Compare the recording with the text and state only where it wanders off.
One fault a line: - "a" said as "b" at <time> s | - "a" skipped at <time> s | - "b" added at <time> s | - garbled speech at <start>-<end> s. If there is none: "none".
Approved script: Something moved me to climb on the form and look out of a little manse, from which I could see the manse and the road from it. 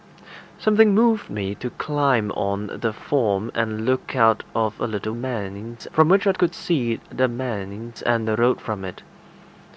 none